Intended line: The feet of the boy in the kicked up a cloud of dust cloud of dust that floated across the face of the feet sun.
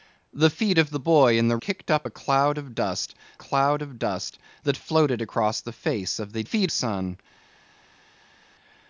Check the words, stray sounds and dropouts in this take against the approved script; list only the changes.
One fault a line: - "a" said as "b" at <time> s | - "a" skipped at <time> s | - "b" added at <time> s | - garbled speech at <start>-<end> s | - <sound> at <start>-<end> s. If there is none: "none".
none